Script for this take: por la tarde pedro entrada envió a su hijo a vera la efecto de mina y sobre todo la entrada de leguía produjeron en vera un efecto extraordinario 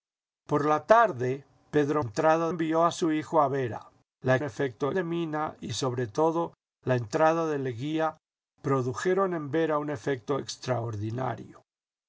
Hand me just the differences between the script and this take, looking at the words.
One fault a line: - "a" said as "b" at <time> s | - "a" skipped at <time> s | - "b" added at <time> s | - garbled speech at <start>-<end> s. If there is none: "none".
none